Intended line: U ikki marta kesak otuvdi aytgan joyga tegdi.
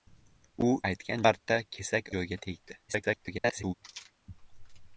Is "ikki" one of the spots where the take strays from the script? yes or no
yes